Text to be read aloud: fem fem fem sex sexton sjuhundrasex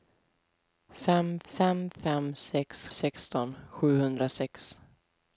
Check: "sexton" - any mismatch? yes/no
no